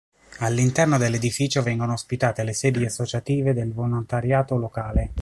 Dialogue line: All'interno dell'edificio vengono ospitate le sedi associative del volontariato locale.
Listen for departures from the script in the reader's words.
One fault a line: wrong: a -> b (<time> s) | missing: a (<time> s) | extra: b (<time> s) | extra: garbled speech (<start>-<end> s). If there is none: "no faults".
no faults